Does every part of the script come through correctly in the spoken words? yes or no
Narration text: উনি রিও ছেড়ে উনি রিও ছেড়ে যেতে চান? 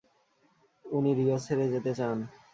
no